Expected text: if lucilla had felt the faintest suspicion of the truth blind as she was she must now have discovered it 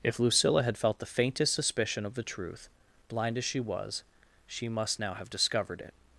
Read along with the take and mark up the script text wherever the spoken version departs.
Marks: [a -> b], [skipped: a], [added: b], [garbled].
if lucilla had felt the faintest suspicion of the truth blind as she was she must now have discovered it